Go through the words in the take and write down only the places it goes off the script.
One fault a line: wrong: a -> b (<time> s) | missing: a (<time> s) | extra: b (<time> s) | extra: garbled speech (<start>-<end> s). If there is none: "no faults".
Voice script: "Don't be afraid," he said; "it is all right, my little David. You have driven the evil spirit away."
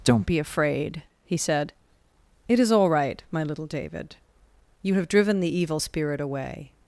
no faults